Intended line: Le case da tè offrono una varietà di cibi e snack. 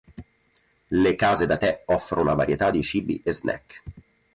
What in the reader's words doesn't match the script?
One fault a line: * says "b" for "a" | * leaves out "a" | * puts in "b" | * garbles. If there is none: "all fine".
all fine